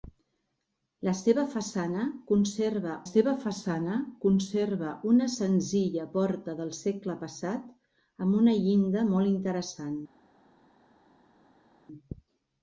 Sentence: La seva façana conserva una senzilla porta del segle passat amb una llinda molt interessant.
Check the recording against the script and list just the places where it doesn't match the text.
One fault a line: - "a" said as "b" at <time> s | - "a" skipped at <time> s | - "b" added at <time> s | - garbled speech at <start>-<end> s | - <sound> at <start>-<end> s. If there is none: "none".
- "seva façana conserva" added at 3.1 s